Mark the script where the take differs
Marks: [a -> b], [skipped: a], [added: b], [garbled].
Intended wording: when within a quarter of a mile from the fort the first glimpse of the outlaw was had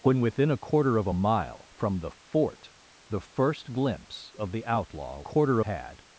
when within a quarter of a mile from the fort the first glimpse of the outlaw [was -> quarter] had